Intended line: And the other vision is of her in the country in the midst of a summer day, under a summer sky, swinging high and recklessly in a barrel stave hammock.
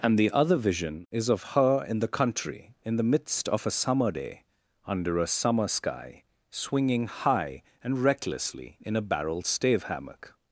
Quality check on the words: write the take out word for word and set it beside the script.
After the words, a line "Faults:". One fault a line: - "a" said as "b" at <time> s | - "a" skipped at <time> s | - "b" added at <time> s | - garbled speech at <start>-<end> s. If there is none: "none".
And the other vision is of her in the country in the midst of a summer day, under a summer sky, swinging high and recklessly in a barrel stave hammock.
Faults:
none